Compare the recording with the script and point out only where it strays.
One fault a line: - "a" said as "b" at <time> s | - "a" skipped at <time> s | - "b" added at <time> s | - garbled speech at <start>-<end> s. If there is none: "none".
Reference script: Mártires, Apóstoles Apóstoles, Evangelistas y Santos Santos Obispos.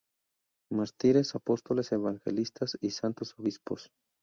- "Apóstoles" skipped at 1.9 s
- "Santos" skipped at 3.3 s